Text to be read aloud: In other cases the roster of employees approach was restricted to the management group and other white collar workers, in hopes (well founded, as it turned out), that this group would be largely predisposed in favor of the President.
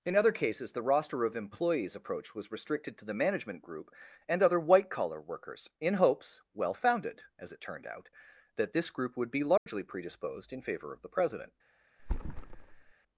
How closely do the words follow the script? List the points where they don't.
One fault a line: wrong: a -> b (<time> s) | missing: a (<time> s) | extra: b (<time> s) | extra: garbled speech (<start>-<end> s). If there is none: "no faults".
no faults